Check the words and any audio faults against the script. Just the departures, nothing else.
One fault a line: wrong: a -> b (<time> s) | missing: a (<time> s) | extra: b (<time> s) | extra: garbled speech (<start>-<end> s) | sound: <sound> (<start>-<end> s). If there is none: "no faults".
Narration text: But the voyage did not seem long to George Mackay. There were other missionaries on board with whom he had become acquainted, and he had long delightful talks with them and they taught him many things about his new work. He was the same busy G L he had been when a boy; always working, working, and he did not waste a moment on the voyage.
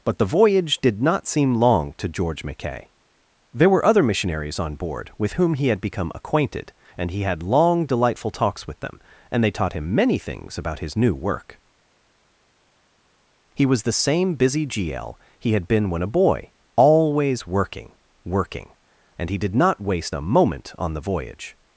no faults